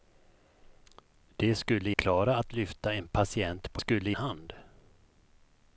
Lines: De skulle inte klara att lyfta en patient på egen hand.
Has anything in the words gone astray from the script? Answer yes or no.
yes